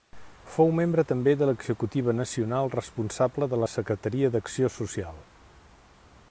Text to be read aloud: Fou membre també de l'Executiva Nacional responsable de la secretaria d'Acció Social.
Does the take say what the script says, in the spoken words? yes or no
yes